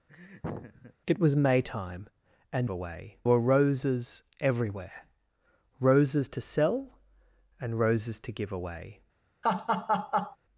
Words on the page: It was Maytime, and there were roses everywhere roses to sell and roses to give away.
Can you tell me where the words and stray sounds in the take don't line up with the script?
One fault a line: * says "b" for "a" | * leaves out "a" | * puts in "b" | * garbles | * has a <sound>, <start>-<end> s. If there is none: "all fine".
* has a laugh, 0.1-0.9 s
* says "away" for "there"
* has a laugh, 9.4-10.4 s